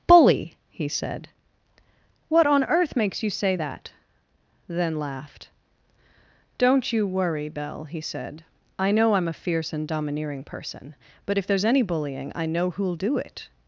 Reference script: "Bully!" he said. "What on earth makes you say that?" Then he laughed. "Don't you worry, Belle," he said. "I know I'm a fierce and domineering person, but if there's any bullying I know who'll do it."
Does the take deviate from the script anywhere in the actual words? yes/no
yes